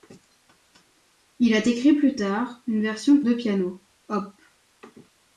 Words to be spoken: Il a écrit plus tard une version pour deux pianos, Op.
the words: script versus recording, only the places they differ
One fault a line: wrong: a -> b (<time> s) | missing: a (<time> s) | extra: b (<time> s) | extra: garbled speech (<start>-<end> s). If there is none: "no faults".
missing: pour (3.2 s)